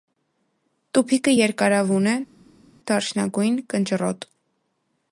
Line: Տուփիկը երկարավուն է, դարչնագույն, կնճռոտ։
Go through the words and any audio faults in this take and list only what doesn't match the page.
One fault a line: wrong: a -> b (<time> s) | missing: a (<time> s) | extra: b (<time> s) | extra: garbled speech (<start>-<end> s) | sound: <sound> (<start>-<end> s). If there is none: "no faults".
no faults